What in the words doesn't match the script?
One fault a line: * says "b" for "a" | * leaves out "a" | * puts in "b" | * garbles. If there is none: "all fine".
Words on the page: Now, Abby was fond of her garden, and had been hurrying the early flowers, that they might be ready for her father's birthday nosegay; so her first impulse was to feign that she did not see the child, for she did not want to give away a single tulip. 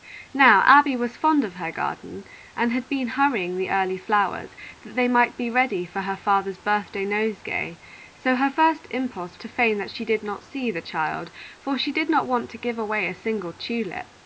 * leaves out "was"